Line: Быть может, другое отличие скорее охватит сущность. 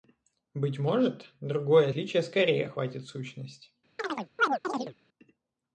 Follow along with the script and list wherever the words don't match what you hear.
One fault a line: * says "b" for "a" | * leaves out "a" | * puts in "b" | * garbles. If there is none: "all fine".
all fine